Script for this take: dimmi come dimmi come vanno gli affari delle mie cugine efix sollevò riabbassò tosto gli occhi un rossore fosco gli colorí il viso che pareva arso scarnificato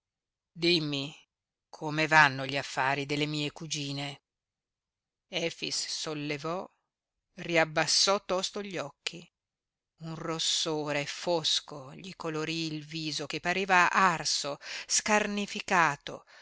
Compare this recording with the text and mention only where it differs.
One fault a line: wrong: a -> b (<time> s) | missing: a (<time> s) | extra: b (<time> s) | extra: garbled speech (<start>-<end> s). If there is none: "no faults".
missing: dimmi come (2.1 s)